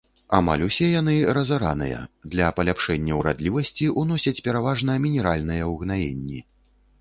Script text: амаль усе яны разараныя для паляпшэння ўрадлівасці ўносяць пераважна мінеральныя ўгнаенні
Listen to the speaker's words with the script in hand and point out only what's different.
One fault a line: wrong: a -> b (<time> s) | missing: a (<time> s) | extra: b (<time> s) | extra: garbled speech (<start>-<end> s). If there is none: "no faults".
no faults